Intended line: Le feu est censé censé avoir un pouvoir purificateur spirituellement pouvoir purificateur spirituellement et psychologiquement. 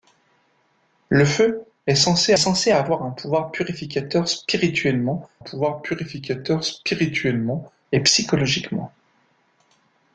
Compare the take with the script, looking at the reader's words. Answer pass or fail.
pass